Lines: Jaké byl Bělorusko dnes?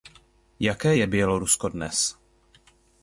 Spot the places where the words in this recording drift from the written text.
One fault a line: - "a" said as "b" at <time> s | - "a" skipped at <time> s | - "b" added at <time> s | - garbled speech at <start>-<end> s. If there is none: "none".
- "byl" said as "je" at 0.9 s